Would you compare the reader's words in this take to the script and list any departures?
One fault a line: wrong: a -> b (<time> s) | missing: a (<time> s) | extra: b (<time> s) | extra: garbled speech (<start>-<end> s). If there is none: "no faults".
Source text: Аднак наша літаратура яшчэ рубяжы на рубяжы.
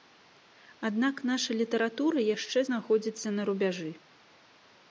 wrong: рубяжы -> знаходзіцца (2.7 s)